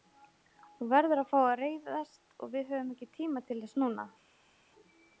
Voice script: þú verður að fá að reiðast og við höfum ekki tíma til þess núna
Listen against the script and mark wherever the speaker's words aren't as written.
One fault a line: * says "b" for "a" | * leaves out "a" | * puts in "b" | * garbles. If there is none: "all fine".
all fine